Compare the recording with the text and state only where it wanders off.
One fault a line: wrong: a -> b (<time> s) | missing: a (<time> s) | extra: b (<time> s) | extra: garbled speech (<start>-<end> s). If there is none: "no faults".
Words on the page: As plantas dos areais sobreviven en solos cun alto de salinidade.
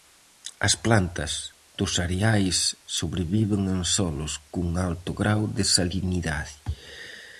extra: grao (5.2 s)